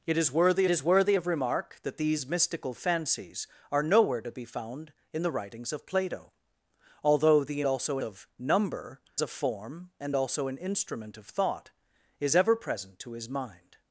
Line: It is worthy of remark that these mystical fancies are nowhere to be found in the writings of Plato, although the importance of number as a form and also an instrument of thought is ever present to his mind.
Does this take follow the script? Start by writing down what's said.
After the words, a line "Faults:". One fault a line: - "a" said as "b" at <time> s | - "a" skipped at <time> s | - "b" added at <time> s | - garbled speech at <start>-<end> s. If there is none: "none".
It is worthy is worthy of remark that these mystical fancies are nowhere to be found in the writings of Plato, although the also of number a form and also an instrument of thought is ever present to his mind.
Faults:
- "is worthy" added at 0.7 s
- "importance" said as "also" at 7.6 s
- "as" skipped at 9.0 s